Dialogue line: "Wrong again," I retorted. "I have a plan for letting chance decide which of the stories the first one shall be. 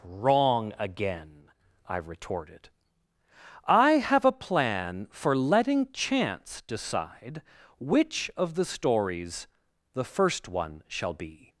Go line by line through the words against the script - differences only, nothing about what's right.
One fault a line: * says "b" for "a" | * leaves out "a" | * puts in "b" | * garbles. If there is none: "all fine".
all fine